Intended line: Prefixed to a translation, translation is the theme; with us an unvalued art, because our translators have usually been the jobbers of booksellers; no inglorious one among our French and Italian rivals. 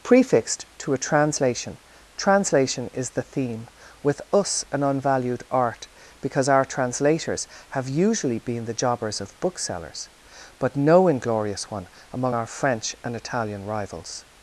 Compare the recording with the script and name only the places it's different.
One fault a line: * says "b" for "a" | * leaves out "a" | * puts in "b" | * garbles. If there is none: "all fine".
* puts in "but"